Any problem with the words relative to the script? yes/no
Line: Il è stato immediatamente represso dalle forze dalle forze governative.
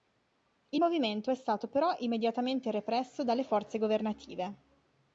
yes